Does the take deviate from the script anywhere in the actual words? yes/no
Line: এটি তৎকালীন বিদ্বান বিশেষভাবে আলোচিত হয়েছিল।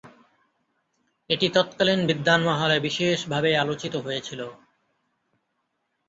yes